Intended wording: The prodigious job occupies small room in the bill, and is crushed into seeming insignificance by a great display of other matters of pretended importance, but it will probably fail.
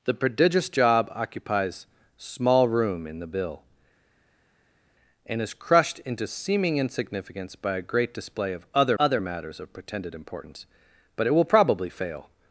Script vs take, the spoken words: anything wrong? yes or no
yes